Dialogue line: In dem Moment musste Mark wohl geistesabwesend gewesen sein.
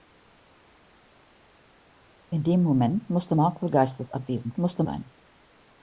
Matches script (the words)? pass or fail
fail